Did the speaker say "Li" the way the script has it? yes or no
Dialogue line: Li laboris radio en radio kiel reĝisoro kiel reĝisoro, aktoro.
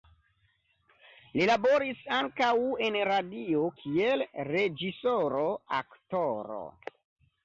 yes